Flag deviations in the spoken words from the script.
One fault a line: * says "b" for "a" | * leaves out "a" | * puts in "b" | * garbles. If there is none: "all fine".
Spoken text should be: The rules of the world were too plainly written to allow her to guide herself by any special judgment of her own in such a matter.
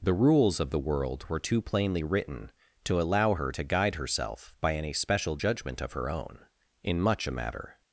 * says "much" for "such"